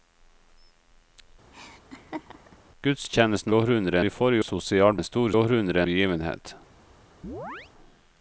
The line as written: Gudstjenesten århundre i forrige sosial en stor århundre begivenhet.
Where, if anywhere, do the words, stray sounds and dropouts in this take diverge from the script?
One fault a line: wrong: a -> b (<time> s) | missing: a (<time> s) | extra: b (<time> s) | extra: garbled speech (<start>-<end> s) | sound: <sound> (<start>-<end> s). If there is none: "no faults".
sound: laugh (1.5-2.6 s)
sound: chirp (7.2-7.7 s)